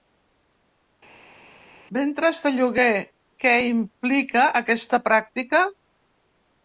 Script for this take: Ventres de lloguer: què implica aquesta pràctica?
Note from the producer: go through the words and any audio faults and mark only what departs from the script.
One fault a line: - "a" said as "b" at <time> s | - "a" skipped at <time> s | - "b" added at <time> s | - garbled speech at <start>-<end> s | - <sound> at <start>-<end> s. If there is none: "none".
none